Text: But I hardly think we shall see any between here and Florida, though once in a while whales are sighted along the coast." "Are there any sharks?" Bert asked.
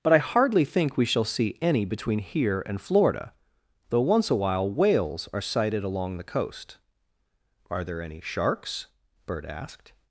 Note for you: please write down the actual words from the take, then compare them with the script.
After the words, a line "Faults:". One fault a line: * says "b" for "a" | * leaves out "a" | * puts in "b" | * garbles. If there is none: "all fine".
But I hardly think we shall see any between here and Florida, though once a while whales are sighted along the coast." "Are there any sharks?" Bert asked.
Faults:
* leaves out "in"